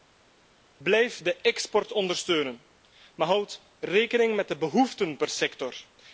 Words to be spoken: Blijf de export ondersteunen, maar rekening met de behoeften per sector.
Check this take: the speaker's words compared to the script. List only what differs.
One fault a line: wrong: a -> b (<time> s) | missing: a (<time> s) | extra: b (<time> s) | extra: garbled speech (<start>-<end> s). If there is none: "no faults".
extra: houd (3.3 s)